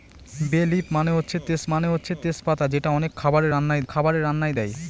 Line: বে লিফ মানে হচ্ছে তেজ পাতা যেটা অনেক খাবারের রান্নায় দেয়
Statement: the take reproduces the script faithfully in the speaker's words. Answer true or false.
false